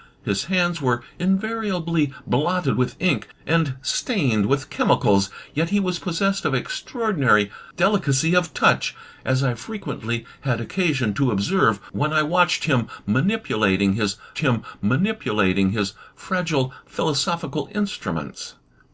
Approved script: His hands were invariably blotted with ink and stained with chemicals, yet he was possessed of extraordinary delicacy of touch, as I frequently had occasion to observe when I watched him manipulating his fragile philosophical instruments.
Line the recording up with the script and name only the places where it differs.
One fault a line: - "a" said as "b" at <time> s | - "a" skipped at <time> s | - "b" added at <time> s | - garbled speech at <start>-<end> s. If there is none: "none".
- "him manipulating his" added at 14.4 s